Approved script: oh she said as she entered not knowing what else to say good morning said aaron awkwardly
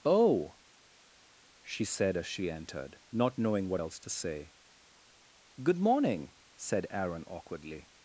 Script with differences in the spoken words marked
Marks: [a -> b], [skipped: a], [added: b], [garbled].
oh she said as she entered not knowing what else to say good morning said aaron awkwardly